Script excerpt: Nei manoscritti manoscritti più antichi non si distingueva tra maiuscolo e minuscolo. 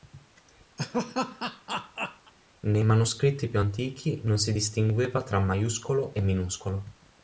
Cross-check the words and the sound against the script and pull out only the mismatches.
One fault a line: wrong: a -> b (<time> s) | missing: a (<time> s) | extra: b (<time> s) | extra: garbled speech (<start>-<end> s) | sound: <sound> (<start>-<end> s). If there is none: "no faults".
sound: laugh (0.8-2.3 s)
missing: manoscritti (3.5 s)